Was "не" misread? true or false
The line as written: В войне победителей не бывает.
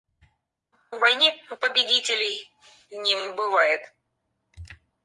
false